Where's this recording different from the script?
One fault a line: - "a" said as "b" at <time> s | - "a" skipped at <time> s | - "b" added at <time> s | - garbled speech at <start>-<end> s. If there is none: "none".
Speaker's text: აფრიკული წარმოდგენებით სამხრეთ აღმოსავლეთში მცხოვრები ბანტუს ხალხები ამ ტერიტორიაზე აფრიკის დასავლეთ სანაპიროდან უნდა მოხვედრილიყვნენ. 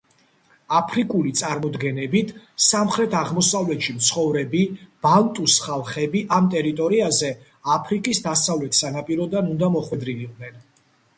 none